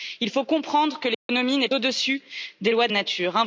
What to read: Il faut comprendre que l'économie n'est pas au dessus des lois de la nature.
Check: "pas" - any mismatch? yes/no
yes